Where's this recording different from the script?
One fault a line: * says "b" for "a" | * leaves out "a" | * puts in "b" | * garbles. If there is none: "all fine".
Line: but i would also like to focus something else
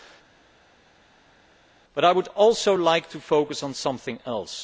* puts in "on"